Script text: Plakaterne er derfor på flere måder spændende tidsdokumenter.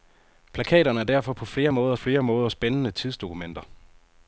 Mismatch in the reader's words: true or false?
true